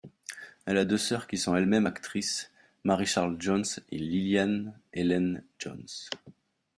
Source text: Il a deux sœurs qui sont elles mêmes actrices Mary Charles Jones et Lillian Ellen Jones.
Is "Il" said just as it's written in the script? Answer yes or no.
no